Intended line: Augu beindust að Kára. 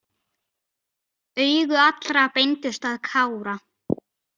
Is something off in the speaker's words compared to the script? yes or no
yes